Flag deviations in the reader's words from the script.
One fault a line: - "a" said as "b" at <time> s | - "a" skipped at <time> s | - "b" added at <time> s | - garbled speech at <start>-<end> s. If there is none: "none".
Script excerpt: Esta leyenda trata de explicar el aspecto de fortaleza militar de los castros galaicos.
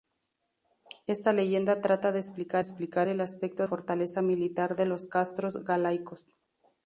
- "explicar" added at 2.6 s
- "de" skipped at 3.7 s